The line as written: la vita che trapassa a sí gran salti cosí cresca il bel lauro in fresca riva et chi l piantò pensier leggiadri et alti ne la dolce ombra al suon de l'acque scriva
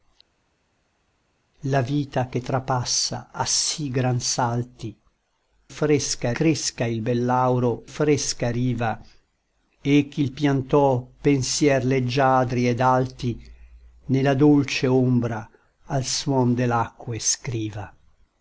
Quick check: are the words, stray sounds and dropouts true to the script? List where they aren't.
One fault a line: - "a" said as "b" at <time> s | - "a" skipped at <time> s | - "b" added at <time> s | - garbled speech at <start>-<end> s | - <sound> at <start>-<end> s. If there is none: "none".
- "cosí" said as "fresca" at 5.7 s
- "in" skipped at 7.8 s